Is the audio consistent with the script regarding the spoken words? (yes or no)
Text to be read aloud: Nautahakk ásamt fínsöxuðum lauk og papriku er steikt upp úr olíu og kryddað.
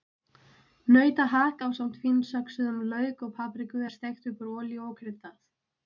yes